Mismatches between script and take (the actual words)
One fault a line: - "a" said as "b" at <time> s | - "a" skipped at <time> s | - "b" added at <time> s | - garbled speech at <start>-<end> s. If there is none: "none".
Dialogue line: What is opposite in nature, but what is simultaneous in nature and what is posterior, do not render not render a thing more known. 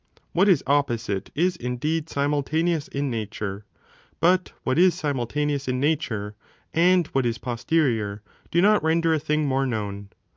- "is indeed simultaneous" added at 1.4 s
- "not render" skipped at 9.1 s